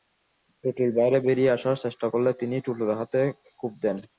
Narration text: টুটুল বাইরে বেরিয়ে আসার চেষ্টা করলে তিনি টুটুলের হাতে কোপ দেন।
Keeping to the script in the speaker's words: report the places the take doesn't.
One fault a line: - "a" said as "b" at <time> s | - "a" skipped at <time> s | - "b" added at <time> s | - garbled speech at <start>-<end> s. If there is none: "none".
none